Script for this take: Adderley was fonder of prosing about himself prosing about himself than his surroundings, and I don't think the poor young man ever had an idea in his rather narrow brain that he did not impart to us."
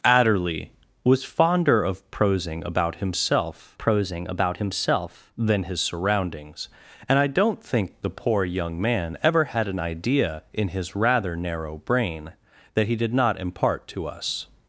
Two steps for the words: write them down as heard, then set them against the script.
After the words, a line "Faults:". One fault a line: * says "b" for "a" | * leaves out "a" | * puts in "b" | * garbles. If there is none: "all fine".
Adderley was fonder of prosing about himself prosing about himself than his surroundings, and I don't think the poor young man ever had an idea in his rather narrow brain that he did not impart to us."
Faults:
all fine